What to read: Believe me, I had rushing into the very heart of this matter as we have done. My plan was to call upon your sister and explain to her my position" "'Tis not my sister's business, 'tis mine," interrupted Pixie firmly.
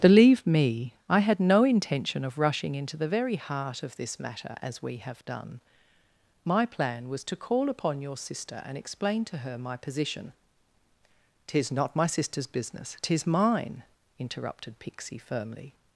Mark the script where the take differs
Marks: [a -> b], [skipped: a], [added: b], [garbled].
Believe me, I had [added: no intention of] rushing into the very heart of this matter as we have done. My plan was to call upon your sister and explain to her my position" "'Tis not my sister's business, 'tis mine," interrupted Pixie firmly.